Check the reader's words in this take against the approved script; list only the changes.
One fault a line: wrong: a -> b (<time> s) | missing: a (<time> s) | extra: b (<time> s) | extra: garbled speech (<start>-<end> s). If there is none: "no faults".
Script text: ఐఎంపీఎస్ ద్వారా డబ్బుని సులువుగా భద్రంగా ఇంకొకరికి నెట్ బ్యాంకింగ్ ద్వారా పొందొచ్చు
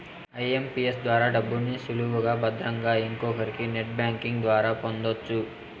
no faults